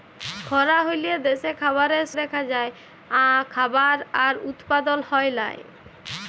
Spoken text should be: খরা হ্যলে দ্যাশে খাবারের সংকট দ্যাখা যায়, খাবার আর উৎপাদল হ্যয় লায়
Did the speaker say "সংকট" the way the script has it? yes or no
no